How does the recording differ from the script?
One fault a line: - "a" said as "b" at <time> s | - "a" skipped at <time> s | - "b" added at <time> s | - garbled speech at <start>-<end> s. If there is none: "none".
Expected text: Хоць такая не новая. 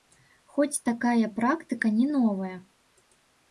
- "практыка" added at 1.4 s